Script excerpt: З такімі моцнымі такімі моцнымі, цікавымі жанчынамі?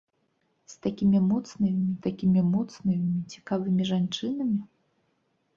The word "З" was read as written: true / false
true